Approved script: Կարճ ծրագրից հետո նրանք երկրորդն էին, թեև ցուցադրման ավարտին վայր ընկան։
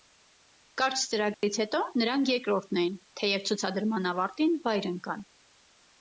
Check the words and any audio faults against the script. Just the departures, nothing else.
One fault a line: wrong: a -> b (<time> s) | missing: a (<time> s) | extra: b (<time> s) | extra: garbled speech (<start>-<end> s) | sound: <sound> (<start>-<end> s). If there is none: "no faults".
sound: dropout (1.3-1.4 s)